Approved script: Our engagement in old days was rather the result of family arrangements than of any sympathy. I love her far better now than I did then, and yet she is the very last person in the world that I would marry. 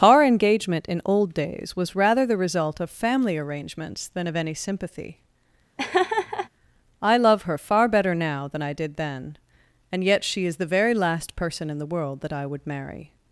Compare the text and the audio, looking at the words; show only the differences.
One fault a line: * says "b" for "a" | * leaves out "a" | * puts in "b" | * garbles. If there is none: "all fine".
all fine